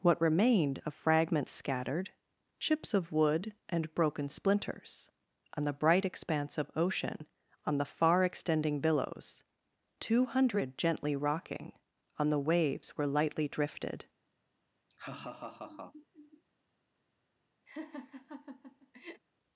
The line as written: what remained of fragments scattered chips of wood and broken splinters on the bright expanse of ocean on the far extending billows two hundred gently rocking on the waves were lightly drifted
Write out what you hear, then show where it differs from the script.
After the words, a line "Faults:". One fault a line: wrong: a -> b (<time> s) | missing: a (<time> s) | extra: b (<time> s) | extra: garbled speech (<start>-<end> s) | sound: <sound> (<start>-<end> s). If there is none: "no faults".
what remained of fragments scattered chips of wood and broken splinters on the bright expanse of ocean on the far extending billows two hundred gently rocking on the waves were lightly drifted
Faults:
sound: laugh (14.9-16.4 s)
sound: laugh (17.7-19.2 s)